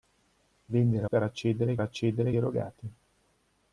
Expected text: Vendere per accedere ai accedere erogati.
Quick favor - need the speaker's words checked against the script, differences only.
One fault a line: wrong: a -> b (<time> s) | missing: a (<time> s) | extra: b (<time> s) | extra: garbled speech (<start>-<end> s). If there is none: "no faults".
no faults